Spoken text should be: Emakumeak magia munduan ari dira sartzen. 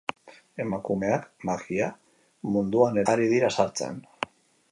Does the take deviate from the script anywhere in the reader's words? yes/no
no